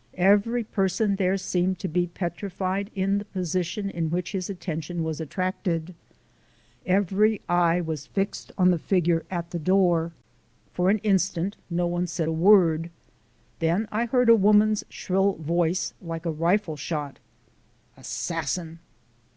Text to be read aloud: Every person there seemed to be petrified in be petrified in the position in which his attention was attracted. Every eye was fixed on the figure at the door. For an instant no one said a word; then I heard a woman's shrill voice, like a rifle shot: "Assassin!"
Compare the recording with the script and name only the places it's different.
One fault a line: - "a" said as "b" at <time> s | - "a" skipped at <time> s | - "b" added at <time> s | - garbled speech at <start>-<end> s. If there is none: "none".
- "be petrified in" skipped at 3.2 s